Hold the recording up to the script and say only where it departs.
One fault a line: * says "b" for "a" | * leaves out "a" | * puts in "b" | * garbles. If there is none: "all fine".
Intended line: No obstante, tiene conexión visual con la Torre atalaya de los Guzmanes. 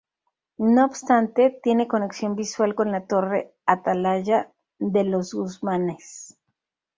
all fine